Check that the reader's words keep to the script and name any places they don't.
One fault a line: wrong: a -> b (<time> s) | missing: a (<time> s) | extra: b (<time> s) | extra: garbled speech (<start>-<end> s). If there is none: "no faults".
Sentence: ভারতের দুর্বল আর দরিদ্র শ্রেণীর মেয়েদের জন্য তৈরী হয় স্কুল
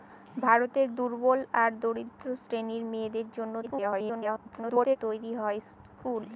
extra: garbled speech (3.6-5.0 s)